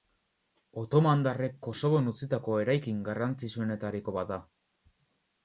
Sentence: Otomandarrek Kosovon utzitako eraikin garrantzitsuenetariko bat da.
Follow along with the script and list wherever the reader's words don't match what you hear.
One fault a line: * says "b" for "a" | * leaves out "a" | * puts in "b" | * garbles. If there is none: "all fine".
all fine